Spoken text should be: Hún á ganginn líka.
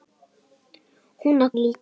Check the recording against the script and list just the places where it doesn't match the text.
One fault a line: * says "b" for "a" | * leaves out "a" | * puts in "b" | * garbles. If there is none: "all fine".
* leaves out "ganginn"